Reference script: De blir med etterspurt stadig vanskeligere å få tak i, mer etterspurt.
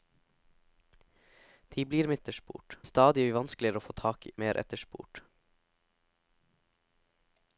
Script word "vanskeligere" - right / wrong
right